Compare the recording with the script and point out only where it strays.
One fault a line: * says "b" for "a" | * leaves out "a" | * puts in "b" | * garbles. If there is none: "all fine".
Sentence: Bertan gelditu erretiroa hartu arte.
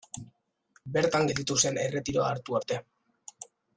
* puts in "zen"